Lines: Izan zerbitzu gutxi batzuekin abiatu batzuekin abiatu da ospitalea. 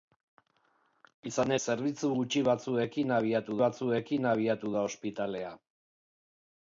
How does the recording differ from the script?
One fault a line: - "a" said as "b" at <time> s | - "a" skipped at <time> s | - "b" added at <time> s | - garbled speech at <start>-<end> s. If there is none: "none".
none